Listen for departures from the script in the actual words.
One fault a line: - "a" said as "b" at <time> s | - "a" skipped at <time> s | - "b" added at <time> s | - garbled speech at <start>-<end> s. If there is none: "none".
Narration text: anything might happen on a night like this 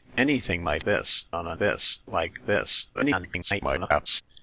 - "happen" said as "this" at 0.8 s
- "night" said as "this" at 1.6 s
- garbled speech at 2.9-4.2 s